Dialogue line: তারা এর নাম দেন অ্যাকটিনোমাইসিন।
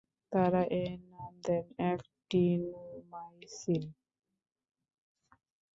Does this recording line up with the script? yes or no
yes